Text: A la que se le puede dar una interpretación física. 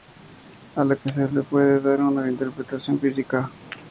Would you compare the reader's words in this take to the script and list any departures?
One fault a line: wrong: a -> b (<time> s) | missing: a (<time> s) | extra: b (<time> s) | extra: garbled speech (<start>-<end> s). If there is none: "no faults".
no faults